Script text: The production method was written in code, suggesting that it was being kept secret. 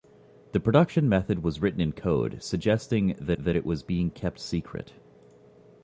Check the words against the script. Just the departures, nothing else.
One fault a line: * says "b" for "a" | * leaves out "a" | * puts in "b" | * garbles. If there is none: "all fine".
* puts in "that"